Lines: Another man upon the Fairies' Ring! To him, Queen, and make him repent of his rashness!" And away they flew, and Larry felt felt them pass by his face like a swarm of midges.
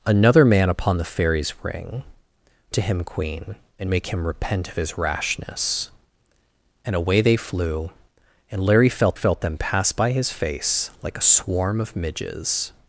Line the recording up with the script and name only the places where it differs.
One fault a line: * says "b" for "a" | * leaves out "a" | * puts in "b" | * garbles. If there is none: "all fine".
all fine